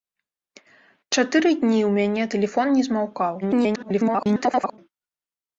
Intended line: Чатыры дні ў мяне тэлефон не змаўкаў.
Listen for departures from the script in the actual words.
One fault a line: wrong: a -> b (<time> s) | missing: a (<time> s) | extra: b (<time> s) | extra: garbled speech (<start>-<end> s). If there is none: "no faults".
extra: garbled speech (3.4-4.8 s)